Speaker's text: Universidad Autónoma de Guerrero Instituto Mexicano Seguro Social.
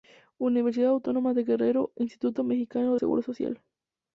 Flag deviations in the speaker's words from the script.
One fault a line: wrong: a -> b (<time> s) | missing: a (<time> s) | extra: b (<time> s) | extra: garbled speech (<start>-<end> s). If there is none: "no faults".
no faults